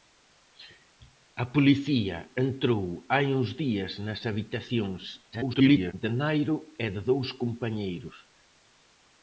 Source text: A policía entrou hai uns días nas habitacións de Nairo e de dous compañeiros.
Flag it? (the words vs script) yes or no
yes